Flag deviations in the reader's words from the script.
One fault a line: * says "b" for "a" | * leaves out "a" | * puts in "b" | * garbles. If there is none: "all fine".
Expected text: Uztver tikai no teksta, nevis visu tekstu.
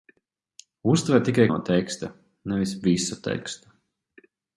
all fine